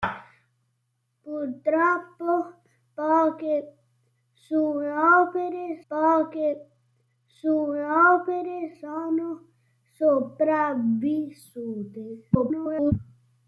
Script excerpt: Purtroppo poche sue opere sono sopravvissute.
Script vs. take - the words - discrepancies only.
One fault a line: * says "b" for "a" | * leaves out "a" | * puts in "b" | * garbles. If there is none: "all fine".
* puts in "poche sue opere"
* garbles